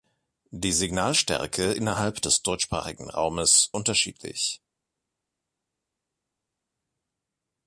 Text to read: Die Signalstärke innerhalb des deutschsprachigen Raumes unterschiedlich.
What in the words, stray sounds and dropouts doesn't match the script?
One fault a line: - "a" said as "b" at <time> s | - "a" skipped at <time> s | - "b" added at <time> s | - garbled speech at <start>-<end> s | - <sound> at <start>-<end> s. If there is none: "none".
none